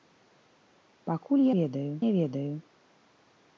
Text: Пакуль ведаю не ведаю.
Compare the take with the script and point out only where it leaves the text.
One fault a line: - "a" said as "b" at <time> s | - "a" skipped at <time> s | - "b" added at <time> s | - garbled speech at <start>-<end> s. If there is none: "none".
none